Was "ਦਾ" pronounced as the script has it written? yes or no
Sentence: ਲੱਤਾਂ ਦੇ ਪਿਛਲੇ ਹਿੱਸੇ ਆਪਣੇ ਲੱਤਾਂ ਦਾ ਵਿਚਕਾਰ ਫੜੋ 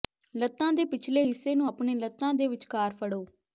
no